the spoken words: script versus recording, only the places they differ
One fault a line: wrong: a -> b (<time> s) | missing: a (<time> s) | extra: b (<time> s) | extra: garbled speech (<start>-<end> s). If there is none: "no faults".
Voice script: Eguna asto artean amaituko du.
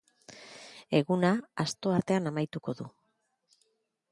no faults